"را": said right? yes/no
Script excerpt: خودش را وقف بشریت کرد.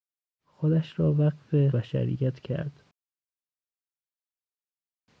yes